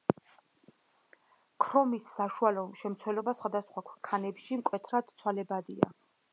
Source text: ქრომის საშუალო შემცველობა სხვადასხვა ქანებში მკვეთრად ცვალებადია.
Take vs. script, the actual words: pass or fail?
pass